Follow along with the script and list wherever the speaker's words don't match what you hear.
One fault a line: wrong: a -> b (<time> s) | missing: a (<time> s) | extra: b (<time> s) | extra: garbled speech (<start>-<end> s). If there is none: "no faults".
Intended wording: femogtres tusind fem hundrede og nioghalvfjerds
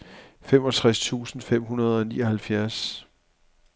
no faults